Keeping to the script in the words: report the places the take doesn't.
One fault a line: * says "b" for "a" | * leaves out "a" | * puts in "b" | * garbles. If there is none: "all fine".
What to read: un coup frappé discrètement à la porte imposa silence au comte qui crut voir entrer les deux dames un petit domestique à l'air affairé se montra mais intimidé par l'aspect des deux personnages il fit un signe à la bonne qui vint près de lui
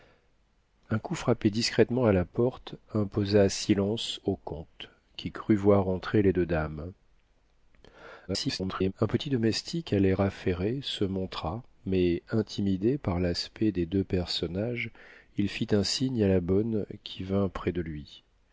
* garbles